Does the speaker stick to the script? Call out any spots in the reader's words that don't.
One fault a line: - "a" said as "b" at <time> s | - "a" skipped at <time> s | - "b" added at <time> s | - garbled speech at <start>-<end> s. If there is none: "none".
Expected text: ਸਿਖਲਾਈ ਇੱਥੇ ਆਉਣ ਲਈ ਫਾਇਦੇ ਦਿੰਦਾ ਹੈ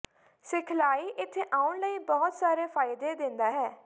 - "ਬਹੁਤ ਸਾਰੇ" added at 2.0 s